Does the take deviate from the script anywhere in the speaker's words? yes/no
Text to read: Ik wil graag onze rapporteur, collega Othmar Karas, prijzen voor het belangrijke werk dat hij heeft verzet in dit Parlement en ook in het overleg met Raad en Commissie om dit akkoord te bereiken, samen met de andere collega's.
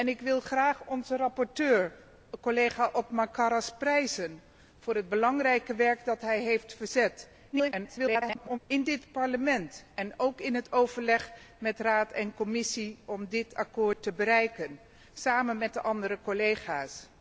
yes